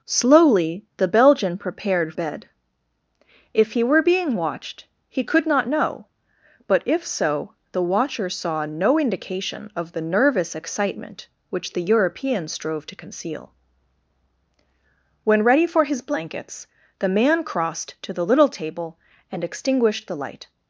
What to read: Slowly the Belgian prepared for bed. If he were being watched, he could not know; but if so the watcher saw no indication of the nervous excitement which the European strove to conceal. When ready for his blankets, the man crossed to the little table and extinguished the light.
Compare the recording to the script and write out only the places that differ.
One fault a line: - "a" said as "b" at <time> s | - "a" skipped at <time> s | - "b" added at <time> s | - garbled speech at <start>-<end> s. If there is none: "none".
- "for" skipped at 2.1 s